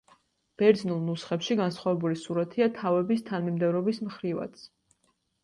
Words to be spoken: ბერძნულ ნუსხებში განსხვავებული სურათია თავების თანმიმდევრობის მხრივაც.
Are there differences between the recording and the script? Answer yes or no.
no